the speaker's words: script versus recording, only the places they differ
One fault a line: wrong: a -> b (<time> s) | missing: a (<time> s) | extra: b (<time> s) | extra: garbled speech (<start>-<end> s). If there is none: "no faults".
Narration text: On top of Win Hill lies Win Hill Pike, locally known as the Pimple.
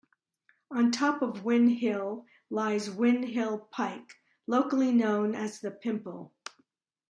no faults